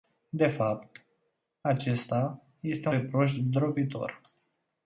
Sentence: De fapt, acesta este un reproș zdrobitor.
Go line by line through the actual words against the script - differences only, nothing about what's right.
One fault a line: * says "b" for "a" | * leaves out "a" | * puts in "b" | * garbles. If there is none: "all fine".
* leaves out "un"